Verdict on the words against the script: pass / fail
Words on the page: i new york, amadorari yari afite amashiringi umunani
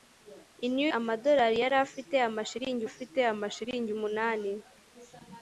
fail